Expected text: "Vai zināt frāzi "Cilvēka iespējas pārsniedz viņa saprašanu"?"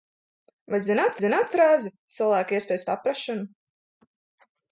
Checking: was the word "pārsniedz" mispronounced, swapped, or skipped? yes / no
yes